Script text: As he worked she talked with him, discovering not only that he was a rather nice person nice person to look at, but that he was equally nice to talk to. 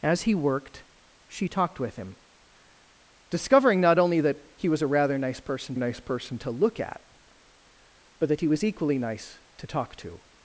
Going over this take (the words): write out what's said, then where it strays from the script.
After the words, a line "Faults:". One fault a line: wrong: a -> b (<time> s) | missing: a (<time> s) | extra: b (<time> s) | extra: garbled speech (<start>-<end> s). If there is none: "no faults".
As he worked she talked with him, discovering not only that he was a rather nice person nice person to look at, but that he was equally nice to talk to.
Faults:
no faults